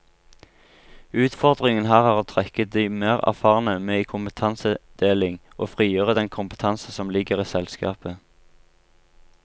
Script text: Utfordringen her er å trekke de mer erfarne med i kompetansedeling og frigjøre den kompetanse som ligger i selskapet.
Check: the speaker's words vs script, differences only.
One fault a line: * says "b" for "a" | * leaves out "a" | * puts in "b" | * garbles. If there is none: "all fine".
all fine